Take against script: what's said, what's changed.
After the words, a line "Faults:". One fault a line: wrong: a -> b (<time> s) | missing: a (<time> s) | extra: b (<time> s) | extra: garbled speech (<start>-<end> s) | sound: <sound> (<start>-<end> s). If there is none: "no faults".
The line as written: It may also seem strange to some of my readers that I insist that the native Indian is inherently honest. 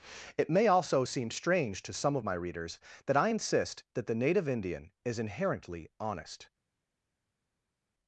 It may also seem strange to some of my readers that I insist that the native Indian is inherently honest.
Faults:
no faults